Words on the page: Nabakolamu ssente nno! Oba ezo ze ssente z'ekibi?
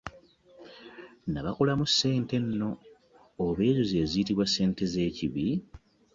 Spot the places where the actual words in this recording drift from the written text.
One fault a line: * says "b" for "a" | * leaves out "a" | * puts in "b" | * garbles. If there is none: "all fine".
* puts in "ziyitibwa"